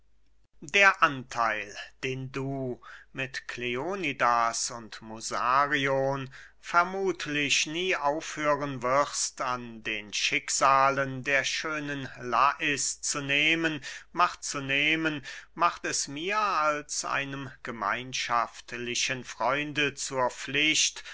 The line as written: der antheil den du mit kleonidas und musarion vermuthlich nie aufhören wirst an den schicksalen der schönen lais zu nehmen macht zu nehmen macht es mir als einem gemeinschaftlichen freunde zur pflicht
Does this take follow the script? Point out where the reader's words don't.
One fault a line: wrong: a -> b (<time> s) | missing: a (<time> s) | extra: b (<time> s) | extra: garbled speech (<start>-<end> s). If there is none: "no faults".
no faults